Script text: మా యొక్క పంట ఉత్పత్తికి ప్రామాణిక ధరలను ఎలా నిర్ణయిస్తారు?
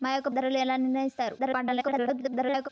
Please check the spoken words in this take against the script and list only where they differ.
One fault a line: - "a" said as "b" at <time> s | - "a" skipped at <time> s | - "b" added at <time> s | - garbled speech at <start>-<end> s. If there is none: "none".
- "పంట ఉత్పత్తికి ప్రామాణిక" skipped at 0.3 s
- garbled speech at 1.4-2.7 s